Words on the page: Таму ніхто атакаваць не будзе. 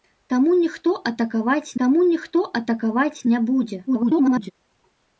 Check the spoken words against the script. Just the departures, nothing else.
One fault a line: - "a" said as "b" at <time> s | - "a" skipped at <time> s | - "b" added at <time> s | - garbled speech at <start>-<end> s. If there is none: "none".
- "таму ніхто атакаваць" added at 1.8 s
- garbled speech at 3.9-4.5 s